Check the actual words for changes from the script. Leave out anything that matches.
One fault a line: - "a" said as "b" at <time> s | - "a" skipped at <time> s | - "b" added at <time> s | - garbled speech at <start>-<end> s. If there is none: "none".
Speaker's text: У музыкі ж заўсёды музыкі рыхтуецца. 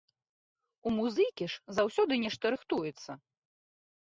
- "музыкі" said as "нешта" at 2.2 s